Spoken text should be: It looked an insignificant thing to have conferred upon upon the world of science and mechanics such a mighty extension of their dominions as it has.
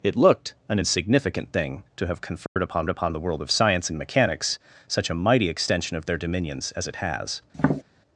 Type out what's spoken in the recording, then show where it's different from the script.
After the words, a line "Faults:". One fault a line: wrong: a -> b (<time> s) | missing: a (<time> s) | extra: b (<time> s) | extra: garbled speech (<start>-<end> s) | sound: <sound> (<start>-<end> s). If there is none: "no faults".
It looked an insignificant thing to have conferred upon upon the world of science and mechanics such a mighty extension of their dominions as it has.
Faults:
sound: dropout (2.5-2.6 s)
sound: tap (7.5-7.8 s)